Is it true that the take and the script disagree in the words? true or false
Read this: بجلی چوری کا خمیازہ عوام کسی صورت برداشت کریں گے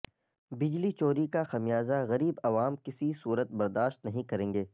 true